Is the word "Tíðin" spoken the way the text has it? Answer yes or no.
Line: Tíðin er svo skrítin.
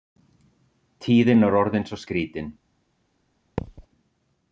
yes